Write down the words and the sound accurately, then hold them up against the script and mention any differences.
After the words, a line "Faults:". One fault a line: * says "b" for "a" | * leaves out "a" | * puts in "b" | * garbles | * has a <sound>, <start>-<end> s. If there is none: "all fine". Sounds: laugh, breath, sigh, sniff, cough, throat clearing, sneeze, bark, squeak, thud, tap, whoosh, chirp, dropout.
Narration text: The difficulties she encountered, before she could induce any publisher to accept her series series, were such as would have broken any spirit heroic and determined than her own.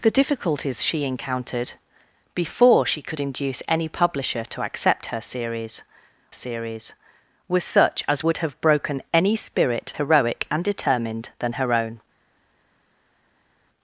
The difficulties she encountered, before she could induce any publisher to accept her series series, were such as would have broken any spirit heroic and determined than her own.
Faults:
all fine